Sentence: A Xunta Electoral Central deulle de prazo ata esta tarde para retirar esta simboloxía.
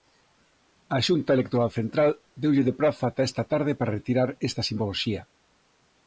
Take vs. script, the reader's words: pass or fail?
pass